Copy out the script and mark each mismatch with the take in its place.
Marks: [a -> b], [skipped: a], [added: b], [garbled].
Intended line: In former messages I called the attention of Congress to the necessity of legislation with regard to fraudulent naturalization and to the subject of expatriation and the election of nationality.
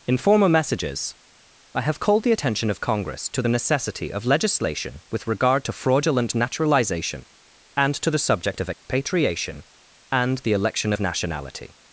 In former messages I [added: have] called the attention of Congress to the necessity of legislation with regard to fraudulent naturalization and to the subject of expatriation and the election of nationality.